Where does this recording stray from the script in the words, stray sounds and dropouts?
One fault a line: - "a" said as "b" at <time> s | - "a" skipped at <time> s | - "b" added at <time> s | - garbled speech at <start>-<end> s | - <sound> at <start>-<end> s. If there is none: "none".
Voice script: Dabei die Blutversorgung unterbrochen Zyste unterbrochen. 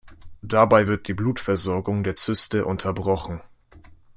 - "wird" added at 0.8 s
- "unterbrochen" said as "der" at 2.0 s